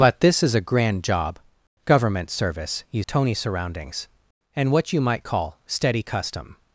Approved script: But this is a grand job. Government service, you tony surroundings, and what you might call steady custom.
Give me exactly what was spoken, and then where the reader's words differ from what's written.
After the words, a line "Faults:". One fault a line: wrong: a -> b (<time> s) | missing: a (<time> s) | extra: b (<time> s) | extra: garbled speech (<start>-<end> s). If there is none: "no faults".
But this is a grand job. Government service, you tony surroundings, and what you might call steady custom.
Faults:
no faults